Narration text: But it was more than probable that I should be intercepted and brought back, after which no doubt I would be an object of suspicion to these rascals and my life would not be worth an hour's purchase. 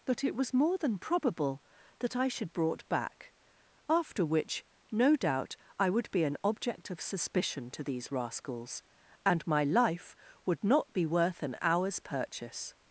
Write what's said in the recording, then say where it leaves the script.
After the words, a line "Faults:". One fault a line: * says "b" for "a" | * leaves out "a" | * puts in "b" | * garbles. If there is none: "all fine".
But it was more than probable that I should brought back, after which no doubt I would be an object of suspicion to these rascals and my life would not be worth an hour's purchase.
Faults:
* leaves out "be intercepted and"